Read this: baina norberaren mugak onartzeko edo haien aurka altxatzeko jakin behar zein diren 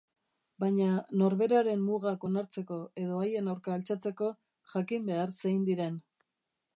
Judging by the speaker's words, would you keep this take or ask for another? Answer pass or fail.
pass